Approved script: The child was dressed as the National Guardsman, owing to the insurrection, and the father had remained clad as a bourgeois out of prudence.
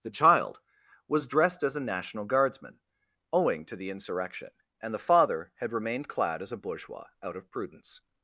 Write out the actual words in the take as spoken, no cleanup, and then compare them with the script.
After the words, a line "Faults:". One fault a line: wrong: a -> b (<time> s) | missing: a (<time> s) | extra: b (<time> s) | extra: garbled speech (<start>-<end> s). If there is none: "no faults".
The child was dressed as a National Guardsman, owing to the insurrection, and the father had remained clad as a bourgeois out of prudence.
Faults:
wrong: the -> a (1.8 s)